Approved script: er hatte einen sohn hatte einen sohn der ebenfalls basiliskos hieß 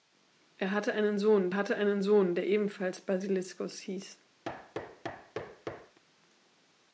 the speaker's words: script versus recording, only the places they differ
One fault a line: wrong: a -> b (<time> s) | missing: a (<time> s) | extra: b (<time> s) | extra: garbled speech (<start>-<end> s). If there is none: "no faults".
no faults